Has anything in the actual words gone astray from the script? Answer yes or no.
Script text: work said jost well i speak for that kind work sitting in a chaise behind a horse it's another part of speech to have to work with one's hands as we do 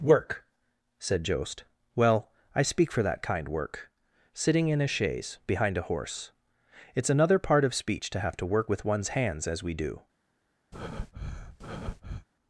no